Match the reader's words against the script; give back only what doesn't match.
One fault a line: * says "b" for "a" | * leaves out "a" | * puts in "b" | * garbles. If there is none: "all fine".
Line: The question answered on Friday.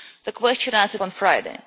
all fine